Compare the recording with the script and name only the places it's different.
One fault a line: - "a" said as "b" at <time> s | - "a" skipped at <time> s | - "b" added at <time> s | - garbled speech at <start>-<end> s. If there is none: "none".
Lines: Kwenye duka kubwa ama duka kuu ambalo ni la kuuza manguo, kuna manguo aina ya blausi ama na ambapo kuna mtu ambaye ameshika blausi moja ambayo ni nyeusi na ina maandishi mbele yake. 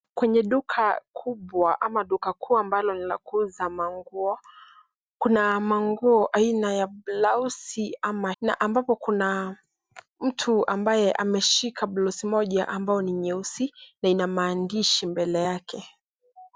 none